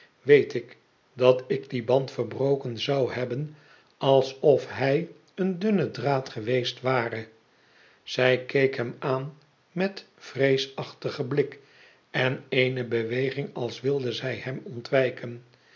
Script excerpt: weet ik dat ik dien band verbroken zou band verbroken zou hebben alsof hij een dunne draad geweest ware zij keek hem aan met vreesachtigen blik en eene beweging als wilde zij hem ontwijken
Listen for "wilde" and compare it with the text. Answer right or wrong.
right